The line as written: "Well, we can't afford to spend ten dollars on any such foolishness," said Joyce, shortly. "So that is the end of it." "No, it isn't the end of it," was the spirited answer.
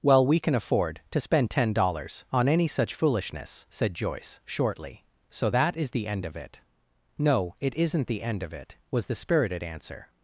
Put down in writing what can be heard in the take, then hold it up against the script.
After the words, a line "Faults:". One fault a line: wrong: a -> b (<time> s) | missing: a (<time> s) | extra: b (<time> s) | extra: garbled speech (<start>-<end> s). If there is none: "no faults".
"Well, we can afford to spend ten dollars on any such foolishness," said Joyce, shortly. "So that is the end of it." "No, it isn't the end of it," was the spirited answer.
Faults:
wrong: can't -> can (0.4 s)